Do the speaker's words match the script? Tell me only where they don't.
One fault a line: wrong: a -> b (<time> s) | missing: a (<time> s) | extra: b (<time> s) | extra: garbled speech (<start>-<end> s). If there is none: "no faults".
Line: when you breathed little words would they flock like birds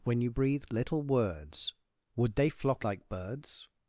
no faults